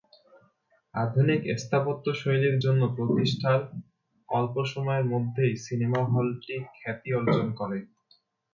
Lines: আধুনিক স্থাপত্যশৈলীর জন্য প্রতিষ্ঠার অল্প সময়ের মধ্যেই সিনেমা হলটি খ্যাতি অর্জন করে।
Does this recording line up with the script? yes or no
yes